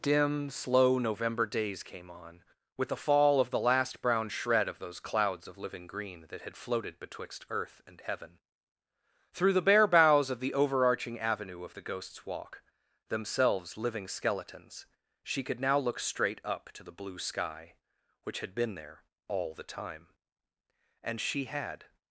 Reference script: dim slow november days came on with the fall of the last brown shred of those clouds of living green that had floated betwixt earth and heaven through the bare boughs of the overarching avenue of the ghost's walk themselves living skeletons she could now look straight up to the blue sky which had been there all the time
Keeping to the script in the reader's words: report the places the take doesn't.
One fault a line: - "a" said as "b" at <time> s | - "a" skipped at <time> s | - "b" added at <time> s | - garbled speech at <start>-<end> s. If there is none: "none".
- "and she had" added at 21.0 s